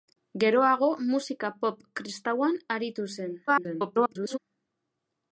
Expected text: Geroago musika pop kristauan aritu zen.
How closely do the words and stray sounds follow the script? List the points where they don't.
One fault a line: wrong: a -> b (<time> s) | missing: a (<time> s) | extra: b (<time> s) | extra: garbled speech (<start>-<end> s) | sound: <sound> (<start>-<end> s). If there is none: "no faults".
extra: garbled speech (3.5-4.4 s)